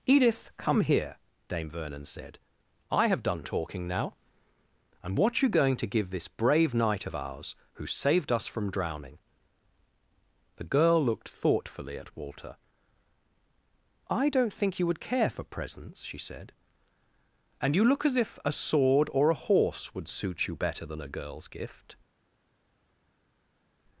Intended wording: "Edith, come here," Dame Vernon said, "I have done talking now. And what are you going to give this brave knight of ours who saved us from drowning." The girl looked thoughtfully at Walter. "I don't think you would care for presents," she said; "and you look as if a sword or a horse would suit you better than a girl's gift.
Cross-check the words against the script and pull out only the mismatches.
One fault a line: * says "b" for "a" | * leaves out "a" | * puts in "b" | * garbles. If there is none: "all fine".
* leaves out "are"